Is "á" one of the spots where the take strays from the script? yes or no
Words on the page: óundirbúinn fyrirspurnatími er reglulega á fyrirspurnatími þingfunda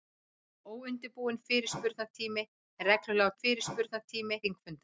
no